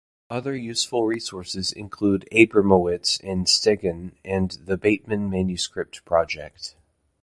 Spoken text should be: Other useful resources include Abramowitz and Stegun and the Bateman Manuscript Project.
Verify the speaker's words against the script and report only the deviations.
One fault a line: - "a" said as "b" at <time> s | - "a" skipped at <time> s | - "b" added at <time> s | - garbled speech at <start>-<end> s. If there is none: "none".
none